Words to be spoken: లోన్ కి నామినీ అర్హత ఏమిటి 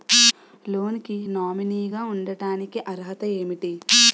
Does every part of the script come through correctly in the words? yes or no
no